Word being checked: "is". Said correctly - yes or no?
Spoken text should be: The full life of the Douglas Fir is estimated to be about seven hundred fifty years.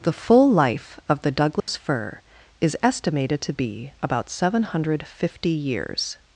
yes